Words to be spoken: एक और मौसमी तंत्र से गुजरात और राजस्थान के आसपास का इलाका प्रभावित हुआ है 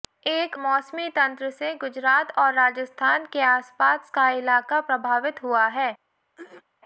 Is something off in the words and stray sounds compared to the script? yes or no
yes